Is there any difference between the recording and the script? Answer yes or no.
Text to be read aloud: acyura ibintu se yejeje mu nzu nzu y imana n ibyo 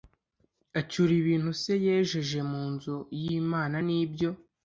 yes